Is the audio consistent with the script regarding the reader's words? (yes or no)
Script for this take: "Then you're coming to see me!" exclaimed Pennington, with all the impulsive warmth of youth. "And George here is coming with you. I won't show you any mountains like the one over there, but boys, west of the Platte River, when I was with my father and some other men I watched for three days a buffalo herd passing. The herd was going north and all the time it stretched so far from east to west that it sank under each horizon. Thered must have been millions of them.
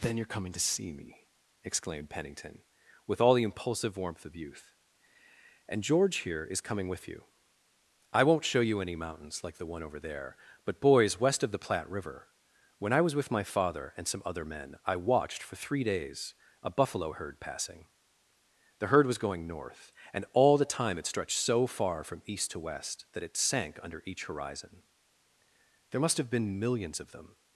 no